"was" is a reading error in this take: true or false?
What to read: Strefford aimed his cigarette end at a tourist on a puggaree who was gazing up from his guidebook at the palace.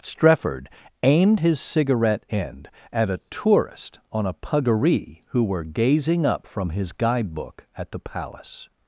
true